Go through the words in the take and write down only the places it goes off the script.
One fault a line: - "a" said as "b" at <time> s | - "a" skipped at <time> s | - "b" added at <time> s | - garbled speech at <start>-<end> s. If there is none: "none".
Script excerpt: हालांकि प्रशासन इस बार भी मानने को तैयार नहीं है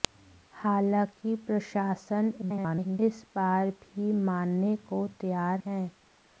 - garbled speech at 2.4-3.0 s
- "नहीं" skipped at 5.6 s